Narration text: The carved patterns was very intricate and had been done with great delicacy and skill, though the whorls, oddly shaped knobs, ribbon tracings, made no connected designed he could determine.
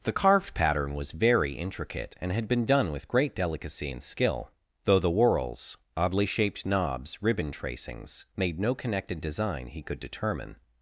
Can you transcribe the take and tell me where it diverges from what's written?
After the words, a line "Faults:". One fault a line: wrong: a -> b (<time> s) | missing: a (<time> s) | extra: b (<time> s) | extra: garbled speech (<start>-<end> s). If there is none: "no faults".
The carved pattern was very intricate and had been done with great delicacy and skill, though the whorls, oddly shaped knobs, ribbon tracings, made no connected design he could determine.
Faults:
wrong: patterns -> pattern (0.6 s)
wrong: designed -> design (9.2 s)